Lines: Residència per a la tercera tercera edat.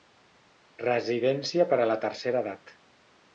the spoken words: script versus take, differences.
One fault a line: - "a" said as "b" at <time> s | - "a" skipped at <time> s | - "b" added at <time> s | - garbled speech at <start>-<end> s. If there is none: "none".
- "tercera" skipped at 2.4 s